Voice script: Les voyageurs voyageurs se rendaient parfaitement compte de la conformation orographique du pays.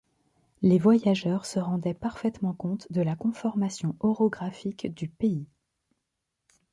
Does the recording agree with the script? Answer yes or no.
no